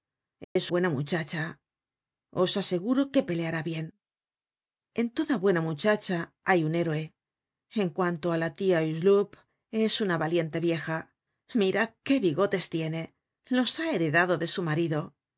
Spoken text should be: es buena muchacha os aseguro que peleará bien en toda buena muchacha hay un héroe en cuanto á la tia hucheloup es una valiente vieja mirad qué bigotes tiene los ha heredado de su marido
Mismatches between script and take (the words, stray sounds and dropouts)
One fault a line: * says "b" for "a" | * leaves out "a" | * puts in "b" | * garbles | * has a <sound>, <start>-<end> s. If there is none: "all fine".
* has a dropout, 0.4-0.6 s